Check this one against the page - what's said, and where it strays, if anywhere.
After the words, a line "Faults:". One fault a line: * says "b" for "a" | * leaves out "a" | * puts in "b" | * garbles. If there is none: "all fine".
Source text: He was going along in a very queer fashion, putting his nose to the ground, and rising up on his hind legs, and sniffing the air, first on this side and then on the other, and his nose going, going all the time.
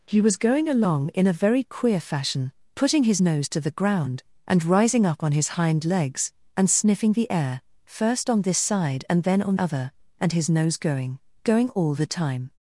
He was going along in a very queer fashion, putting his nose to the ground, and rising up on his hind legs, and sniffing the air, first on this side and then on other, and his nose going, going all the time.
Faults:
* leaves out "the"